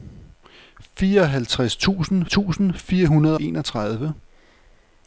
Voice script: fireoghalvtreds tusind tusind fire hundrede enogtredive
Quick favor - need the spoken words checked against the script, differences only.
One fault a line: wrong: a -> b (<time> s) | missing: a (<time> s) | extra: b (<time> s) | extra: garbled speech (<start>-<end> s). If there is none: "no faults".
no faults